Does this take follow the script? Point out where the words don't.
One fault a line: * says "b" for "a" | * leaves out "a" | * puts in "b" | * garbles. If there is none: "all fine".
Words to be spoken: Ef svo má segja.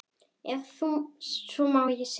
all fine